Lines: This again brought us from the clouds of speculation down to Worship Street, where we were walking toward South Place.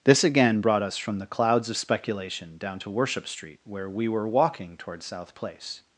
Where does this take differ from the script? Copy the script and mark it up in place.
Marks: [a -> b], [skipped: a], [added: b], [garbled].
This again brought us from the clouds of speculation down to Worship Street, where we were walking toward South Place.